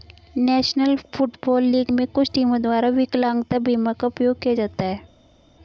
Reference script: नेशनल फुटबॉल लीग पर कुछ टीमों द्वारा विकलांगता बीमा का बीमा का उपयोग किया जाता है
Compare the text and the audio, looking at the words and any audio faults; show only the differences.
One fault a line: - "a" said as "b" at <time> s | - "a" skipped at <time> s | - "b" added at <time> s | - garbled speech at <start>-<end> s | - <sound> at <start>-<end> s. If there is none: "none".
- "पर" said as "में" at 1.9 s
- "बीमा का" skipped at 4.1 s